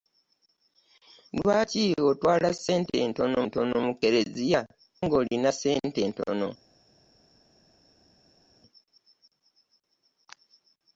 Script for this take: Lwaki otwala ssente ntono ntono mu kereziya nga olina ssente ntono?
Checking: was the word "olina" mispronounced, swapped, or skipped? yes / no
no